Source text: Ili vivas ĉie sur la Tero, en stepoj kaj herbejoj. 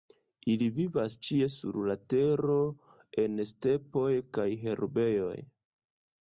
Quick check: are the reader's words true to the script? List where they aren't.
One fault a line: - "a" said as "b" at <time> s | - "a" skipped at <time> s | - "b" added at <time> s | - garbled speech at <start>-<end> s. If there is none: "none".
none